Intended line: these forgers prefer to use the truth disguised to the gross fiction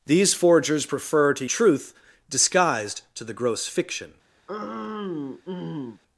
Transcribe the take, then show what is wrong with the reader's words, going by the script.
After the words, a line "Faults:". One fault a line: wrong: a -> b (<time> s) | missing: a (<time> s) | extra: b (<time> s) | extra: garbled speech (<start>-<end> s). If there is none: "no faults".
these forgers prefer to truth disguised to the gross fiction
Faults:
missing: use the (1.4 s)